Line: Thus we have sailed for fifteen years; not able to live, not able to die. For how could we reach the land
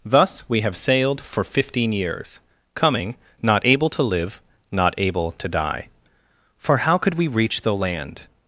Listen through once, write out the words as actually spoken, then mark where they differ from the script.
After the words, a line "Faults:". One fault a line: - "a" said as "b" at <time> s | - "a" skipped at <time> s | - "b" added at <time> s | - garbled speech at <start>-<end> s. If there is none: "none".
Thus we have sailed for fifteen years; coming not able to live, not able to die. For how could we reach the land
Faults:
- "coming" added at 2.8 s